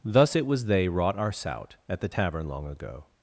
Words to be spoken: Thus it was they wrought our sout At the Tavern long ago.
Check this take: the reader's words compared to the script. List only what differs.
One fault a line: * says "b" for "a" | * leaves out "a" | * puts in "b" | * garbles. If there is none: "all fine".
all fine